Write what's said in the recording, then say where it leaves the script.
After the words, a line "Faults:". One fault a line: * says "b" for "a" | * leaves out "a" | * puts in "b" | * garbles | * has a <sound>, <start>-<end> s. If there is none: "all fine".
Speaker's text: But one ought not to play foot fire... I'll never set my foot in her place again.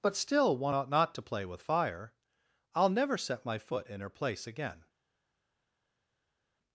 But still one ought not to play with fire... I'll never set my foot in her place again.
Faults:
* puts in "still"
* says "with" for "foot"